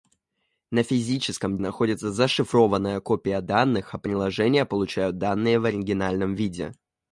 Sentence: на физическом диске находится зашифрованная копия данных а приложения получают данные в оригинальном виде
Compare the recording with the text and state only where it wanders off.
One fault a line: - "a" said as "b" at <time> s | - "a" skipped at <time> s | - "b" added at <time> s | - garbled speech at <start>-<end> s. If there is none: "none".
- "диске" skipped at 1.6 s